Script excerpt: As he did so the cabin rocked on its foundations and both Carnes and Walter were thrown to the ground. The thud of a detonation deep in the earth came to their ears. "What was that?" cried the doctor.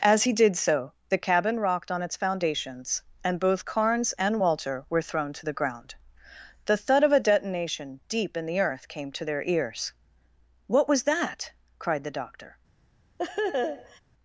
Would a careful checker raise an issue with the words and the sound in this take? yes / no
yes